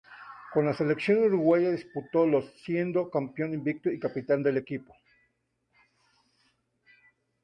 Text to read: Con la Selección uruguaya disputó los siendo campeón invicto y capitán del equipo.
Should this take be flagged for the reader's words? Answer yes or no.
no